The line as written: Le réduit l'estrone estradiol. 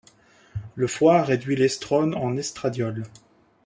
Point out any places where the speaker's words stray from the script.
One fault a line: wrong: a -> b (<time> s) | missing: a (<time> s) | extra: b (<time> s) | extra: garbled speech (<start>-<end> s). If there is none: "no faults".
extra: foie (0.9 s)
extra: en (2.1 s)